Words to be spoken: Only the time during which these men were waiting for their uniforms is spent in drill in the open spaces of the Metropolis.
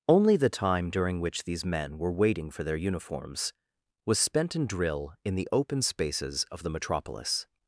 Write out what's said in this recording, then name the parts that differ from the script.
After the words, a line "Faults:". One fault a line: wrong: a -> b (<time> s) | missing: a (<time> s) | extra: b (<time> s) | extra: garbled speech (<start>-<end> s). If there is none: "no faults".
Only the time during which these men were waiting for their uniforms was spent in drill in the open spaces of the Metropolis.
Faults:
wrong: is -> was (4.0 s)